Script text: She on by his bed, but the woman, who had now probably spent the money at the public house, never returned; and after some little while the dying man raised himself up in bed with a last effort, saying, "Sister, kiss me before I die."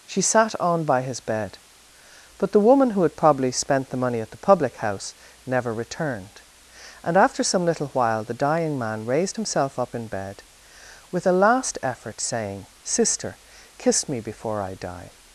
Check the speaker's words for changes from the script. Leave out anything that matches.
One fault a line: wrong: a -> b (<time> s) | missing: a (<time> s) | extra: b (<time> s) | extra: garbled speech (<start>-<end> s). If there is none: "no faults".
extra: sat (0.2 s)
missing: now (3.1 s)